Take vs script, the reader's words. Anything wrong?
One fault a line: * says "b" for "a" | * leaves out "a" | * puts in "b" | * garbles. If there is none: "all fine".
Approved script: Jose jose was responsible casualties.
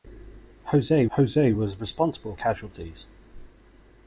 all fine